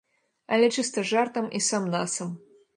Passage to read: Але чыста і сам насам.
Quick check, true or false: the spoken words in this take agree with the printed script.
false